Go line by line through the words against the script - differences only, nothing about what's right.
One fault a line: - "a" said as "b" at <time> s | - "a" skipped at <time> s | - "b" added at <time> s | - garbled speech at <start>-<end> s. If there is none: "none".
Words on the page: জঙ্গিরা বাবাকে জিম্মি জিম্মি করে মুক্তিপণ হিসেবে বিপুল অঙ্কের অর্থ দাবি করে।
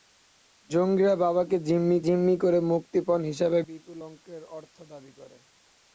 none